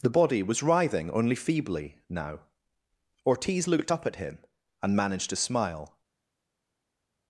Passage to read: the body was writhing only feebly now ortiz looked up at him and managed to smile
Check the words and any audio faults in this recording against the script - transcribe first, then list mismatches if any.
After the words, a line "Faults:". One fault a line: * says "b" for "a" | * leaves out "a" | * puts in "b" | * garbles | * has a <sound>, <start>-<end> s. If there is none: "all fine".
the body was writhing only feebly now ortiz looked up at him and managed to smile
Faults:
all fine